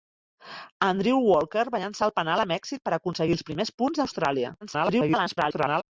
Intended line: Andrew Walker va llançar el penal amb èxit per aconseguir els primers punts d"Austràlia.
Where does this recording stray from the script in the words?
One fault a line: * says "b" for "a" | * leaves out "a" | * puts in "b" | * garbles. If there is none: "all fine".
* garbles